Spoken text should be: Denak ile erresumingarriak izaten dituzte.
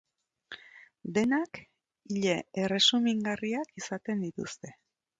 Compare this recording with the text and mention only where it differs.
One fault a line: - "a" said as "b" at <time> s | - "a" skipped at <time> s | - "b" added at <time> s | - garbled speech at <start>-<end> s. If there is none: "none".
none